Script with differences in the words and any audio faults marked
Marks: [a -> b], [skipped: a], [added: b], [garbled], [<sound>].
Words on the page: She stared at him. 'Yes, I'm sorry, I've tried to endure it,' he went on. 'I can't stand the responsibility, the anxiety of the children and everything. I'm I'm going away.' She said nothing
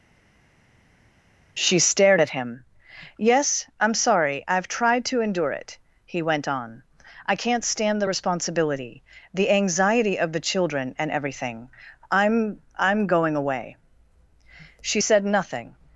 She stared at him. 'Yes, I'm sorry, I've tried to endure it,' he went on. 'I can't stand the responsibility, the anxiety of the children and everything. I'm I'm going away.' She said nothing